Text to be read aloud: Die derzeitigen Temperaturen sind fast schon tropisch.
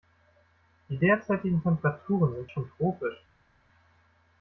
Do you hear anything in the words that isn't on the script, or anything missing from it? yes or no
yes